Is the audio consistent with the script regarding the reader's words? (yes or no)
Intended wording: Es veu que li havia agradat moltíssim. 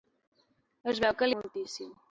no